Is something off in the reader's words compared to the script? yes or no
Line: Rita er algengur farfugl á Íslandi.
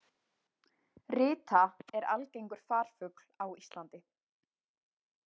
no